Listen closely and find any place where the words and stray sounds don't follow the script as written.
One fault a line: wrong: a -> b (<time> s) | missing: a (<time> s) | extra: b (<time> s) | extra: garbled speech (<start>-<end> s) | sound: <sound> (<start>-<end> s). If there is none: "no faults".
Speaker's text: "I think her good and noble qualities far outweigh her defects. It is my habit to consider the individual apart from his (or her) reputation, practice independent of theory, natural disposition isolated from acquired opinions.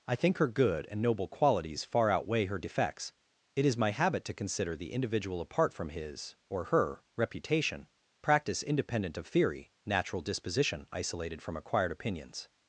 no faults